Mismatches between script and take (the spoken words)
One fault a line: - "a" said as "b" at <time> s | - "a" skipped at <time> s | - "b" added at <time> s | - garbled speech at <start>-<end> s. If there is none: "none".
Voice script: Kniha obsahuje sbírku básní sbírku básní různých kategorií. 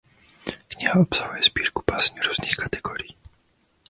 - "sbírku básní" skipped at 2.2 s